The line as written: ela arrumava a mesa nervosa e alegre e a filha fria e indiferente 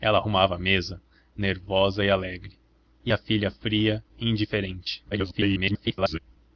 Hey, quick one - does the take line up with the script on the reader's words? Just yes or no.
no